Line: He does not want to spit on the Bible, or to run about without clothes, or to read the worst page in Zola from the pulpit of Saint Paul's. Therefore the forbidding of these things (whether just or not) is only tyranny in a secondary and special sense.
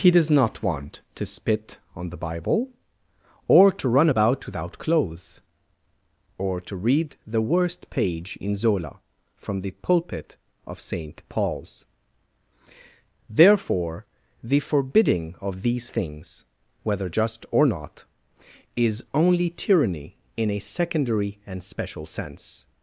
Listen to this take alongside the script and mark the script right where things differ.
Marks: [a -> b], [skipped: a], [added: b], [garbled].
He does not want to spit on the Bible, or to run about without clothes, or to read the worst page in Zola from the pulpit of Saint Paul's. Therefore the forbidding of these things (whether just or not) is only tyranny in a secondary and special sense.